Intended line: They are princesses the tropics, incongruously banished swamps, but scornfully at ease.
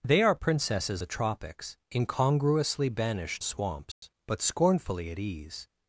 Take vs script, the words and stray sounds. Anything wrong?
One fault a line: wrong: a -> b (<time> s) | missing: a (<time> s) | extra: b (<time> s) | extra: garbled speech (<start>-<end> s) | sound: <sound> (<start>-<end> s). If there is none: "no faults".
sound: dropout (3.9-4.0 s)